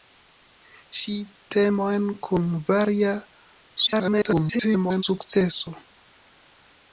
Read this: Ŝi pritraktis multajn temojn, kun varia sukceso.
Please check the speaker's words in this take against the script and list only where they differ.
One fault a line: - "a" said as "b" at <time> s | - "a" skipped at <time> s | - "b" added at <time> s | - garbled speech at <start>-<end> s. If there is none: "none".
- "pritraktis multajn" skipped at 1.1 s
- garbled speech at 3.9-5.0 s